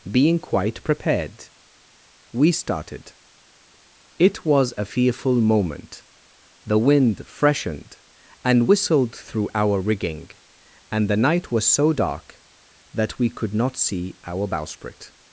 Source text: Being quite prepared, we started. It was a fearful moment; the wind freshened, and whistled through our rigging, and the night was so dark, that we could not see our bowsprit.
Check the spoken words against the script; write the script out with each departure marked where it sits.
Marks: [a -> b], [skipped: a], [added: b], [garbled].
Being quite prepared, we started. It was a fearful moment; the wind freshened, and whistled through our rigging, and the night was so dark, that we could not see our bowsprit.